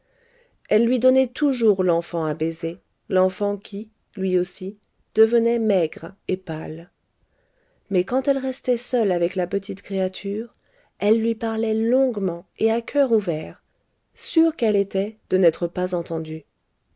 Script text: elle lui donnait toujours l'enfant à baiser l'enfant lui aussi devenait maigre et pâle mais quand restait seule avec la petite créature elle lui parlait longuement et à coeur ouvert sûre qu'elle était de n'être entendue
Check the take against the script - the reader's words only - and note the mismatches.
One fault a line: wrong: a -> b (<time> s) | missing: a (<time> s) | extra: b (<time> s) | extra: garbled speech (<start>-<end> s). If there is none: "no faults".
extra: qui (3.6 s)
extra: elle (8.3 s)
extra: pas (15.7 s)